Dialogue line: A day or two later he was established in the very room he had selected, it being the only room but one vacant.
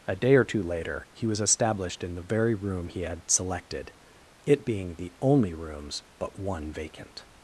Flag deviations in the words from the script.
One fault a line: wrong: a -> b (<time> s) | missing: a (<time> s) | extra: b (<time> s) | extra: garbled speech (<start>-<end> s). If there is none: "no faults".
wrong: room -> rooms (5.5 s)